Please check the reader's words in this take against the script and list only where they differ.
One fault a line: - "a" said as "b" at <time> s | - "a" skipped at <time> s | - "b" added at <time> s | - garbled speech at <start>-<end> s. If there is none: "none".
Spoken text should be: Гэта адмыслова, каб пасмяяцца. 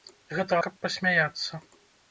- "адмыслова" skipped at 0.5 s